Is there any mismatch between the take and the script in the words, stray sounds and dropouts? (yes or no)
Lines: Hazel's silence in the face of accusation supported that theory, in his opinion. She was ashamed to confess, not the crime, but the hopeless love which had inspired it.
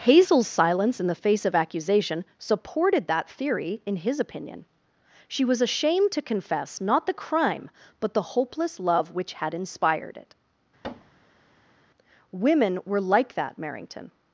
yes